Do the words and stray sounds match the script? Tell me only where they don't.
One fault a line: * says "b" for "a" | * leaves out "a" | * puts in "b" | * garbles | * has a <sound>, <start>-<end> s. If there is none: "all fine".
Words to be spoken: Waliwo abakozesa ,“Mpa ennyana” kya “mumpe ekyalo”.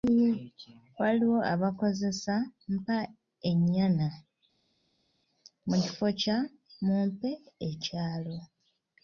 * puts in "mu kifo"